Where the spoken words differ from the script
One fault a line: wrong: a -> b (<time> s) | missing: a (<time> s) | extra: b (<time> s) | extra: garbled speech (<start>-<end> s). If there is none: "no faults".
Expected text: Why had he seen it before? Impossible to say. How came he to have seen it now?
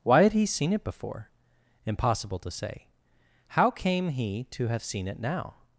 no faults